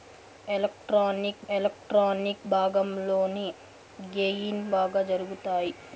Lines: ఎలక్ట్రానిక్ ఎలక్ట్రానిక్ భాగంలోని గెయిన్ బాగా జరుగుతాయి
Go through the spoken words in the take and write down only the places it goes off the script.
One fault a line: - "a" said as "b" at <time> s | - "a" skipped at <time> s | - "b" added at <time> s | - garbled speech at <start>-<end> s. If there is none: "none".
none